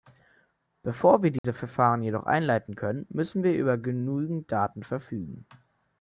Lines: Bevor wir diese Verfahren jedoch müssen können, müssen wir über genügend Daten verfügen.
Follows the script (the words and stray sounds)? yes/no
no